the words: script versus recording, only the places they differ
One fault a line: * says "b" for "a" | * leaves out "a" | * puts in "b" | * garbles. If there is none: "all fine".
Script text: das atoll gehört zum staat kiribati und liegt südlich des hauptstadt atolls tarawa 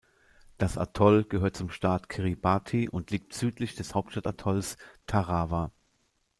all fine